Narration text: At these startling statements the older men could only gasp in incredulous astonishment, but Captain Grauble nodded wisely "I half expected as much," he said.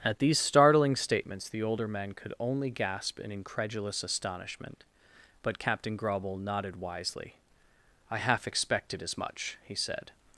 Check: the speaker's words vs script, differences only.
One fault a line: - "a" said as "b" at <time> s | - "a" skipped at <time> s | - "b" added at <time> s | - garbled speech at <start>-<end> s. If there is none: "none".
none